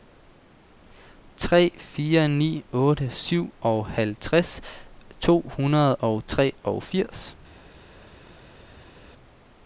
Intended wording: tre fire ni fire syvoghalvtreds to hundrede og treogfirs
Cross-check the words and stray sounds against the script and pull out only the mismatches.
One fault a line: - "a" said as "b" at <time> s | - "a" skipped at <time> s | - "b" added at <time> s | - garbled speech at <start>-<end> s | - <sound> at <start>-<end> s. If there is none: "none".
- "fire" said as "otte" at 2.7 s